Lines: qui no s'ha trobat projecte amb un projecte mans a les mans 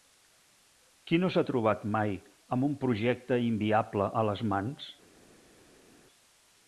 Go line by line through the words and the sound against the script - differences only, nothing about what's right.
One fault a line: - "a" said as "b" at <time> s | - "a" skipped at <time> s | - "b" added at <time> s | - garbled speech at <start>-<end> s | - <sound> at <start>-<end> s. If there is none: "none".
- "projecte" said as "mai" at 2.0 s
- "mans" said as "inviable" at 3.5 s